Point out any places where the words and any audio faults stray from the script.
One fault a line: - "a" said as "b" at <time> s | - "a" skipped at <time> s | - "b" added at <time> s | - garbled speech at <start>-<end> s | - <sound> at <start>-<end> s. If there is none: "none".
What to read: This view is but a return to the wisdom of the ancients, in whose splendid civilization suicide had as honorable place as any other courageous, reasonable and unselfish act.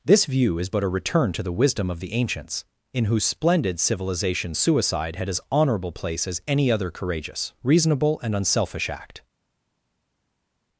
none